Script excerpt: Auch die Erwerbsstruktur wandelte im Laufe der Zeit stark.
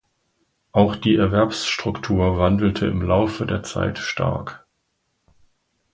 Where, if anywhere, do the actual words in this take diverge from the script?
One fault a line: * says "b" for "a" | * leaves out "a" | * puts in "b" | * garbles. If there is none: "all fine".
all fine